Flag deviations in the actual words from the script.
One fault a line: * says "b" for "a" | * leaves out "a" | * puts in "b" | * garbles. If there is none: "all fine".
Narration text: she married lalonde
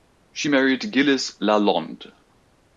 * puts in "gilles"